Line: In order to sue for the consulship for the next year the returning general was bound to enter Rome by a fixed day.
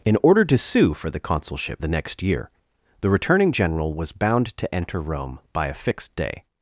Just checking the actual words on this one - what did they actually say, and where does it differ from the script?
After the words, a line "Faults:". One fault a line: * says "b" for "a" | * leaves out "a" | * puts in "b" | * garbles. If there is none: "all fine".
In order to sue for the consulship the next year the returning general was bound to enter Rome by a fixed day.
Faults:
* leaves out "for"